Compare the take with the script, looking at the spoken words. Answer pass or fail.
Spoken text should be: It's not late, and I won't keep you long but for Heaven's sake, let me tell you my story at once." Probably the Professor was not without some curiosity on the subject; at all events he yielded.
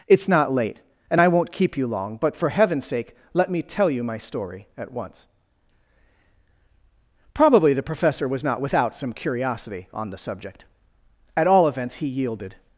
pass